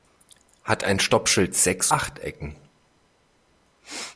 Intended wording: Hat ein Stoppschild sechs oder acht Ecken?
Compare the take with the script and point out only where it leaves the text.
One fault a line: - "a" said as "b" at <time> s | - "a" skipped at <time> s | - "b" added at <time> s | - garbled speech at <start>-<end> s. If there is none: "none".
- "oder" skipped at 1.9 s